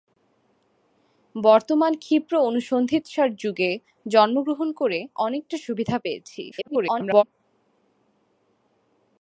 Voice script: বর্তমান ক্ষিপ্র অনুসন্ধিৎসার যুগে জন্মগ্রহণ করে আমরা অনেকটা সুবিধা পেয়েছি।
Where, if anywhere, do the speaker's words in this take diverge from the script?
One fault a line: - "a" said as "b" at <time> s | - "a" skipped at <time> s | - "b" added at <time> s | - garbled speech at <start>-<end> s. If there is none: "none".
- "আমরা" skipped at 5.0 s
- garbled speech at 6.5-7.2 s